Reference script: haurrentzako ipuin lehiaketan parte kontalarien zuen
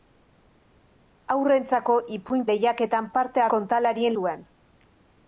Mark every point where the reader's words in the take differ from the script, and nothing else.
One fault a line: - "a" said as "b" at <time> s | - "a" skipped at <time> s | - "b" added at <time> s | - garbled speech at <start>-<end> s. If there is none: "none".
none